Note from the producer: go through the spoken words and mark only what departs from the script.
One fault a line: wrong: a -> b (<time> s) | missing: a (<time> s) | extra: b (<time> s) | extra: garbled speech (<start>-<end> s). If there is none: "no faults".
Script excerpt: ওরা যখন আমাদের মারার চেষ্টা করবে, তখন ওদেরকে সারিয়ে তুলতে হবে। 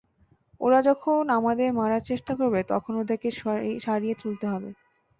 no faults